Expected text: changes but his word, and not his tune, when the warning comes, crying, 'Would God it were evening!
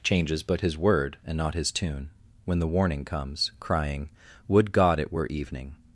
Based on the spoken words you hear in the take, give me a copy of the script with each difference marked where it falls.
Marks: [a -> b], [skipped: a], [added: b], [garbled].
changes but his word, and not his tune, when the warning comes, crying, 'Would God it were evening!